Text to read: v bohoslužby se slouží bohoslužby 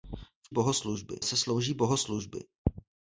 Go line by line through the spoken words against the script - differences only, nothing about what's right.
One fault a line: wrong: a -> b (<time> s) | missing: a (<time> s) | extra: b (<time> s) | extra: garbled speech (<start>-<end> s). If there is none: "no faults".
no faults